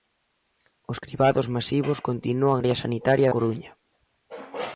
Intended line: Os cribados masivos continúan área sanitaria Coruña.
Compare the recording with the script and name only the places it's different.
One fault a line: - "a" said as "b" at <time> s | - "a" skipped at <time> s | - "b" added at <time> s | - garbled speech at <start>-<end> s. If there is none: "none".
none